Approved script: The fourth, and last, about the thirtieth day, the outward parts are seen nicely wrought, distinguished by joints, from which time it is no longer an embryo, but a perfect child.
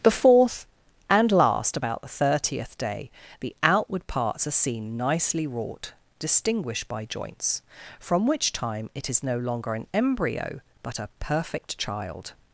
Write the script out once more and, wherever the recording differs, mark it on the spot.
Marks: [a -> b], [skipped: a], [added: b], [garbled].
The fourth, and last, about the thirtieth day, the outward parts are seen nicely wrought, distinguished by joints, from which time it is no longer an embryo, but a perfect child.